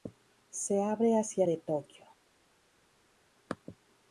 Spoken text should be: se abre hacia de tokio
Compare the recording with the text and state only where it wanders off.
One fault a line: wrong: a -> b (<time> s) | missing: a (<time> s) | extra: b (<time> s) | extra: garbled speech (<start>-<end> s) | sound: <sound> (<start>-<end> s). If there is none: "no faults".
no faults